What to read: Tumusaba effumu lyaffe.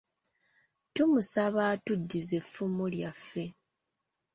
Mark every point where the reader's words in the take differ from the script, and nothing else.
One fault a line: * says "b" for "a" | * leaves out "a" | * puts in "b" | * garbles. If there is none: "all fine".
* puts in "atuddize"